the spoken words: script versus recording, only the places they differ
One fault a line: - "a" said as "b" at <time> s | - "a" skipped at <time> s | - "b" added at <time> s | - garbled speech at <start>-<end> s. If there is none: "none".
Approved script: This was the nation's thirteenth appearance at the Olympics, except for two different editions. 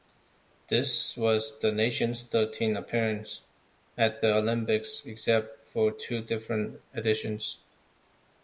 none